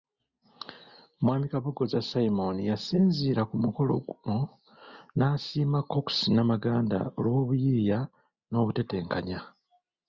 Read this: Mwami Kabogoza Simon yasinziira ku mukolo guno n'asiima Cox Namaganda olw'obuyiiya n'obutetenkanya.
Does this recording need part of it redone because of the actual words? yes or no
no